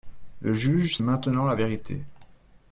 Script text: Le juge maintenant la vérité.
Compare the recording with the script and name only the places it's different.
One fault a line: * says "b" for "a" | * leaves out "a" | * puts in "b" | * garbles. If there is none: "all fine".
all fine